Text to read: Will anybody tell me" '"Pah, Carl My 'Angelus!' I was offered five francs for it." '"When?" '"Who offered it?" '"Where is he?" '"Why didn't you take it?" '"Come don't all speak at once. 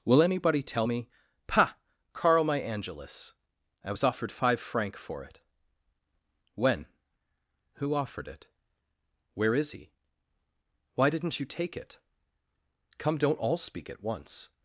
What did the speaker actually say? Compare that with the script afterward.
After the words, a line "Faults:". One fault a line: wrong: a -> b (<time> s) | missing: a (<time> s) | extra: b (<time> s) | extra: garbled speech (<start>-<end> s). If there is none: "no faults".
Will anybody tell me" '"Pah, Carl My 'Angelus!' I was offered five franc for it." '"When?" '"Who offered it?" '"Where is he?" '"Why didn't you take it?" '"Come don't all speak at once.
Faults:
wrong: francs -> franc (4.6 s)